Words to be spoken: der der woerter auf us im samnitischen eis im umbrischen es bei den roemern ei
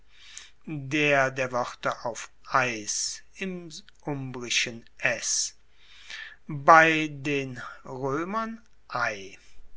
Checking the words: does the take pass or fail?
fail